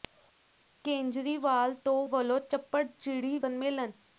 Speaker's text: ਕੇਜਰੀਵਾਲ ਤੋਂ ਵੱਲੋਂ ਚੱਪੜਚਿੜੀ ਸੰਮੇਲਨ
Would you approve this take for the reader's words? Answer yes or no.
yes